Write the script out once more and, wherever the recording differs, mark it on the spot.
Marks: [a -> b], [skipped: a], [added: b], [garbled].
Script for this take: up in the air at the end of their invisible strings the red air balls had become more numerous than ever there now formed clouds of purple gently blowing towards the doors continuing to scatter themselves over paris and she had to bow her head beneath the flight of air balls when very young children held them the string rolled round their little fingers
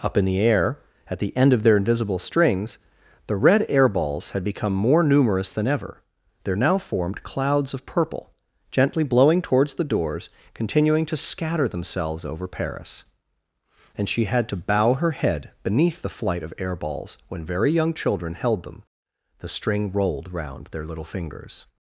up in the air at the end of their invisible strings the red air balls had become more numerous than ever there now formed clouds of purple gently blowing towards the doors continuing to scatter themselves over paris and she had to bow her head beneath the flight of air balls when very young children held them the string rolled round their little fingers